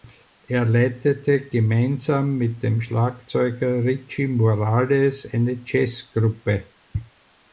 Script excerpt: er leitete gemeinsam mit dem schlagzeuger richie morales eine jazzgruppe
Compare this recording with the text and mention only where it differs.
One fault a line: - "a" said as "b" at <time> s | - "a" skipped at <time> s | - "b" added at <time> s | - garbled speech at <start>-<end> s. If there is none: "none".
none